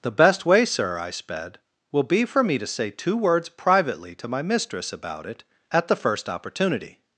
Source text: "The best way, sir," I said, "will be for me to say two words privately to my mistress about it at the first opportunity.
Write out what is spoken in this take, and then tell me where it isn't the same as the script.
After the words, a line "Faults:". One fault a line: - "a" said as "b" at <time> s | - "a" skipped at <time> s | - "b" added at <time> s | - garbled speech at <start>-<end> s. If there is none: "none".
"The best way, sir," I sped, "will be for me to say two words privately to my mistress about it at the first opportunity.
Faults:
- "said" said as "sped" at 1.1 s